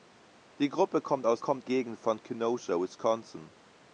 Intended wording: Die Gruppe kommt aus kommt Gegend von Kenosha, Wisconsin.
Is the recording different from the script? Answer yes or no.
no